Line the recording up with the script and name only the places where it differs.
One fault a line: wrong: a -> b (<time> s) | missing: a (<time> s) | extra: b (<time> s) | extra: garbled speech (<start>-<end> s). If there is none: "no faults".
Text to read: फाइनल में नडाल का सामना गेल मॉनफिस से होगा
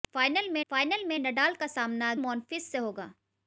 extra: फाइनल में (0.7 s)
missing: गेल (2.1 s)